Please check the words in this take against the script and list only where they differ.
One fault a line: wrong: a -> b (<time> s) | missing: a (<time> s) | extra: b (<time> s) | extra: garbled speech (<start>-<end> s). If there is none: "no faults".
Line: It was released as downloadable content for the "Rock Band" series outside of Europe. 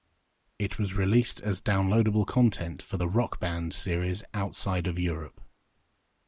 no faults